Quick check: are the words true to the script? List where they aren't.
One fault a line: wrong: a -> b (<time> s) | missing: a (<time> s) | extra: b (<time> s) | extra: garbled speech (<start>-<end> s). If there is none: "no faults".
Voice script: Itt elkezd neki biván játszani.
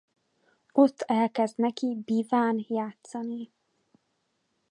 wrong: Itt -> Ott (0.7 s)